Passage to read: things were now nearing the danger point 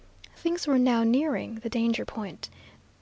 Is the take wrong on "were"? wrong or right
right